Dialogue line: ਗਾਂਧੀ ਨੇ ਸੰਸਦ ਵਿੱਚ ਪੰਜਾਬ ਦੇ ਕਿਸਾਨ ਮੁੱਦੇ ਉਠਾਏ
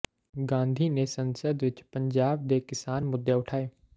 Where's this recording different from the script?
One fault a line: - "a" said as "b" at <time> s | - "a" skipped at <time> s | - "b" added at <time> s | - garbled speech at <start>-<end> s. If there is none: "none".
none